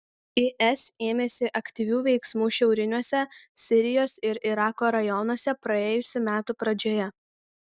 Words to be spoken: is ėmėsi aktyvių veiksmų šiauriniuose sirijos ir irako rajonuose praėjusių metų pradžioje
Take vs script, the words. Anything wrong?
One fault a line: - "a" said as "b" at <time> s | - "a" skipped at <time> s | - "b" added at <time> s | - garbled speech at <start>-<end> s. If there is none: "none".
none